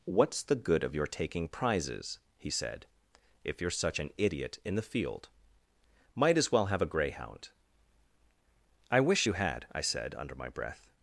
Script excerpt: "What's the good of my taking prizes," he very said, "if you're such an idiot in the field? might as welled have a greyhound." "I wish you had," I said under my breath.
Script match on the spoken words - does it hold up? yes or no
no